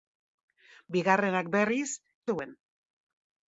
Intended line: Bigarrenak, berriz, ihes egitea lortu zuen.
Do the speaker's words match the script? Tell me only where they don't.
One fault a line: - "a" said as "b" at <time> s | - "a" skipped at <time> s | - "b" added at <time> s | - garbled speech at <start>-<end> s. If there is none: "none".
- "ihes egitea lortu" skipped at 1.9 s